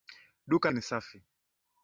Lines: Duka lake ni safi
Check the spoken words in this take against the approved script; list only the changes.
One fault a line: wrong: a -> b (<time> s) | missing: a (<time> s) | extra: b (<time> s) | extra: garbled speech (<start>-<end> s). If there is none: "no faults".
missing: lake (0.7 s)